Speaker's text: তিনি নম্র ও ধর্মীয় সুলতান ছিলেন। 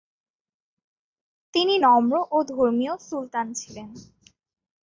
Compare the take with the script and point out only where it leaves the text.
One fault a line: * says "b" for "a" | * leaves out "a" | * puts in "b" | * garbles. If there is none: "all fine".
all fine